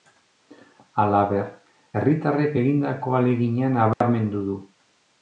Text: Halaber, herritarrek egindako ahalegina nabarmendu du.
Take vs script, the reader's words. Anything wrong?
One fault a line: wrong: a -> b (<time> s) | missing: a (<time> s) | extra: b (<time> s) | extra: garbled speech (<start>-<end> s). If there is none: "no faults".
no faults